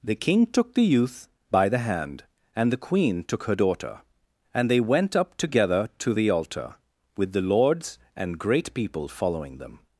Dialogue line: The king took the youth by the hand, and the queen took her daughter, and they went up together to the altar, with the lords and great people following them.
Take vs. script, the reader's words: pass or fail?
pass